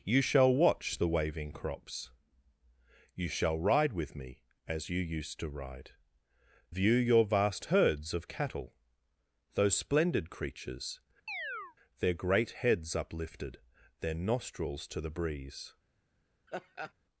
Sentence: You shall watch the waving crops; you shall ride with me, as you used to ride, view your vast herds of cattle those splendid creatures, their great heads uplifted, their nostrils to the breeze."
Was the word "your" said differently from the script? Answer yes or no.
no